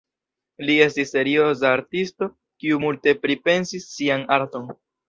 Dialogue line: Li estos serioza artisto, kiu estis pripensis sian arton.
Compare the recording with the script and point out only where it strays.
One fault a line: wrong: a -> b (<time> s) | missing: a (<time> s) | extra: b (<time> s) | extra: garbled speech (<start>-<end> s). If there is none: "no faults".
wrong: estos -> estis (0.8 s)
wrong: estis -> multe (2.8 s)